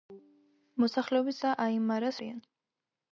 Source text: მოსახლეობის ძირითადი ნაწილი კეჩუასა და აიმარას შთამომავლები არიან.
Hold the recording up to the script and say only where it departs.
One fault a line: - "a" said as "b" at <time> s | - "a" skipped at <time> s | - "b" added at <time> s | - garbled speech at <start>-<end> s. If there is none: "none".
- "ძირითადი ნაწილი კეჩუასა" skipped at 1.4 s
- "შთამომავლები" skipped at 2.2 s